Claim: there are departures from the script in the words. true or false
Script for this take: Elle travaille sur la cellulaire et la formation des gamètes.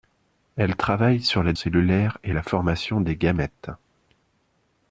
false